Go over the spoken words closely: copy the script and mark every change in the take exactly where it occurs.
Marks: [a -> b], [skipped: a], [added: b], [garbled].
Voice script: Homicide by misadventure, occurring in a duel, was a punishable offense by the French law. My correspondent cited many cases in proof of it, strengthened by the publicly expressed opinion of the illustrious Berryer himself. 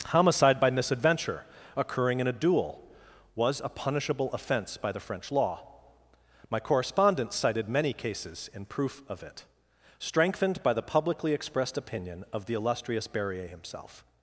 Homicide by misadventure, occurring in a duel, was a punishable offense by the French law. My correspondent cited many cases in proof of it, strengthened by the publicly expressed opinion of the illustrious Berryer himself.